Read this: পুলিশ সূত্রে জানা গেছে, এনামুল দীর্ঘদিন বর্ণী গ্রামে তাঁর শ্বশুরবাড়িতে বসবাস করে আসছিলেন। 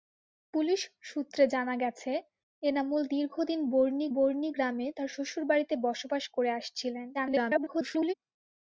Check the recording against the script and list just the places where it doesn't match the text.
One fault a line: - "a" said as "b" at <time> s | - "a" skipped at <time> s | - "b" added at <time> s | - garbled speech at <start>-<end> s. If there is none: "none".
- "বর্ণী" added at 4.1 s
- garbled speech at 7.1-8.1 s